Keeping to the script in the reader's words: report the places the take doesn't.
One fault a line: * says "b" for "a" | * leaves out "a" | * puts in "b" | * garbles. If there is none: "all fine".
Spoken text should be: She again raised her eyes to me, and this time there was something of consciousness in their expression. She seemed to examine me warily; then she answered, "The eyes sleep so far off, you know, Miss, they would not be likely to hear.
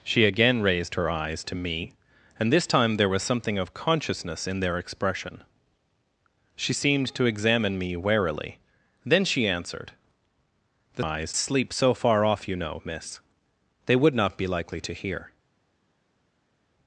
all fine